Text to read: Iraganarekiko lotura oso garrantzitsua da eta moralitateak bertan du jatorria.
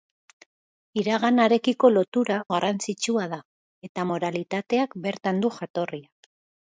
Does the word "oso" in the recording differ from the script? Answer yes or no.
yes